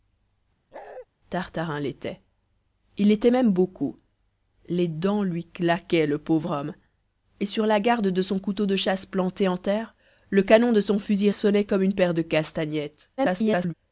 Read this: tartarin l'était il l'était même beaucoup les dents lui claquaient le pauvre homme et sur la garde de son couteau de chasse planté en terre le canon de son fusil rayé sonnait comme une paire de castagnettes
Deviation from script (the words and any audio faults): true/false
true